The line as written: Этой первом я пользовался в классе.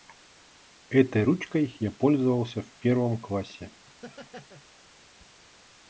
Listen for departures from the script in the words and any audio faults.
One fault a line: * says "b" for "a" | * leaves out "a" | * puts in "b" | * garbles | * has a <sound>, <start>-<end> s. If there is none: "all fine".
* says "ручкой" for "первом"
* puts in "первом"
* has a laugh, 3.9-4.6 s